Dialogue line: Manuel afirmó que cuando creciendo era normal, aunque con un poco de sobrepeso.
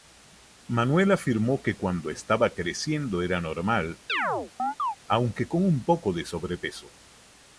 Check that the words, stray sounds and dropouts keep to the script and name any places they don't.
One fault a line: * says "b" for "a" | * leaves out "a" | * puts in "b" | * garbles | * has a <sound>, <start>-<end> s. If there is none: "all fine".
* puts in "estaba"
* has a chirp, 4.1-5.0 s